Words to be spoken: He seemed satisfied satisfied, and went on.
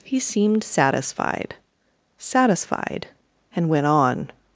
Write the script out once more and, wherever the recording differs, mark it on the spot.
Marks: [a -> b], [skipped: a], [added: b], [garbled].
He seemed satisfied satisfied, and went on.